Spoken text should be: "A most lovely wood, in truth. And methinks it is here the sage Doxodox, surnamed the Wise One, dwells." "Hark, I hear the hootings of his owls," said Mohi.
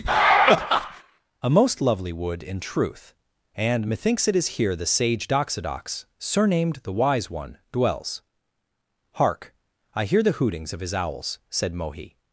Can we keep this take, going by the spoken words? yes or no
yes